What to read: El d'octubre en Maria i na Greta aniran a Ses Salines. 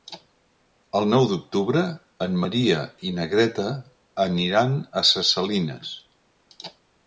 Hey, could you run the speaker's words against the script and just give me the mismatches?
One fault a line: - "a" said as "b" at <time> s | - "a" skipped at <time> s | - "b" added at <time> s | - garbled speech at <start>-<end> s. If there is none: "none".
- "nou" added at 1.1 s